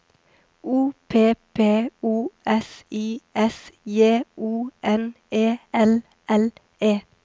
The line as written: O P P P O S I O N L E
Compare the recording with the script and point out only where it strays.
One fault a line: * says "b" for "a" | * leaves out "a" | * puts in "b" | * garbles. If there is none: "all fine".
* leaves out "P"
* puts in "S J"
* puts in "E L"